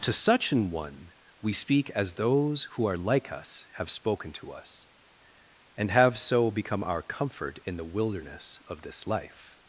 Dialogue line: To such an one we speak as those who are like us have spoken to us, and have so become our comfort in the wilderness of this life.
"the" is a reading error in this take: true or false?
false